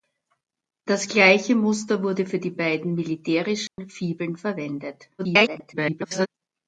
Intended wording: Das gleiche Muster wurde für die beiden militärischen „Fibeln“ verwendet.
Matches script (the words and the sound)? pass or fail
fail